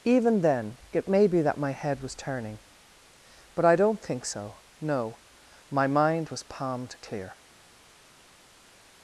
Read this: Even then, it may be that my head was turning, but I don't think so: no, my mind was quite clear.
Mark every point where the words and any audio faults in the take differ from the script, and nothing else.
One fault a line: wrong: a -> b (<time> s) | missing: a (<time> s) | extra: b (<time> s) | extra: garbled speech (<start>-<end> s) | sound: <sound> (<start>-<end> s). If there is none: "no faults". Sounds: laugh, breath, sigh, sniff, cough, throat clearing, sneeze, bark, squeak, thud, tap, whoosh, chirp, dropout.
wrong: quite -> palmed (6.4 s)